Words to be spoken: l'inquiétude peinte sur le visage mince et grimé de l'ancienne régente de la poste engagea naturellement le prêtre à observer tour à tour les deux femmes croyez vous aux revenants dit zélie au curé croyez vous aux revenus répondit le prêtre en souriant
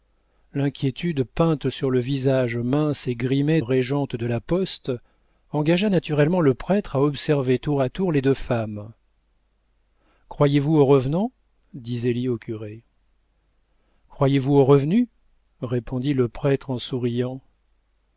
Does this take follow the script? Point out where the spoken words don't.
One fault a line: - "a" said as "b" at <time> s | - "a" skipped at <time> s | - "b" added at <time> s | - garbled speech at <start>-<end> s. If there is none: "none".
- "de l'ancienne" skipped at 3.6 s